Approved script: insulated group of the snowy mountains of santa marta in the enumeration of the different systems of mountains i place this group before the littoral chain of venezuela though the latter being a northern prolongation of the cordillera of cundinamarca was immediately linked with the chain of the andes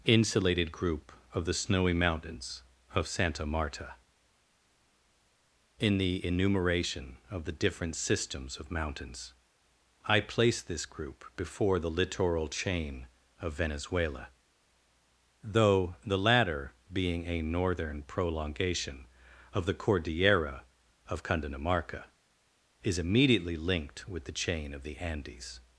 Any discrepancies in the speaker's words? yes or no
yes